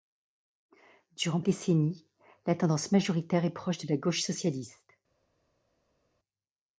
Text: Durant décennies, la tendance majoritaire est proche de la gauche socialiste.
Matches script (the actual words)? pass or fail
pass